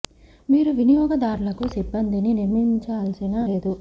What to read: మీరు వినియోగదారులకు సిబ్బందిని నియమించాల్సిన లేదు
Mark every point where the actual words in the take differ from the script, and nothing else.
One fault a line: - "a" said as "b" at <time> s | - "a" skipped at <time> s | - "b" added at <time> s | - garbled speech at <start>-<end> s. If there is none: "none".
none